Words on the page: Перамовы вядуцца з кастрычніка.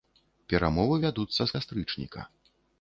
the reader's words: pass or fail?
pass